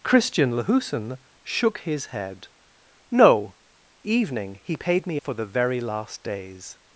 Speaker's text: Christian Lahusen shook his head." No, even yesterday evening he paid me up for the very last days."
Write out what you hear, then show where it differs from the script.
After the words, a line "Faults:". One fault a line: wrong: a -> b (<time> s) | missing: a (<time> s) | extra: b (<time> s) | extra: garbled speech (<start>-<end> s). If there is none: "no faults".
Christian Lahusen shook his head." No, evening he paid me for the very last days."
Faults:
missing: even yesterday (3.5 s)
missing: up (5.2 s)